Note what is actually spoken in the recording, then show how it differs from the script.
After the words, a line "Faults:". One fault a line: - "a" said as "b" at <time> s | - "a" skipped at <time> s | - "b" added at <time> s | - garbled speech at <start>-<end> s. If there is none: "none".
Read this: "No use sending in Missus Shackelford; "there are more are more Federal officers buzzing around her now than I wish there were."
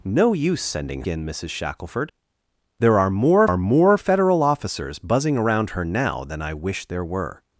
"No use sending in Missus Shackelford; "there are more are more Federal officers buzzing around her now than I wish there were."
Faults:
none